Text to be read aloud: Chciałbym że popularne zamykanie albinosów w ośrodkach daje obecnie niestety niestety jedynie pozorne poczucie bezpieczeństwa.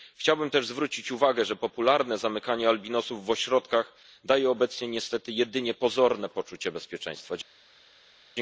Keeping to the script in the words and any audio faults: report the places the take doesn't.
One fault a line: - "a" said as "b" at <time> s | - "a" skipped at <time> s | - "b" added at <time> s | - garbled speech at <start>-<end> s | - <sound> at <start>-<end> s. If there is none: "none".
- "też zwrócić uwagę" added at 0.5 s
- "niestety" skipped at 5.3 s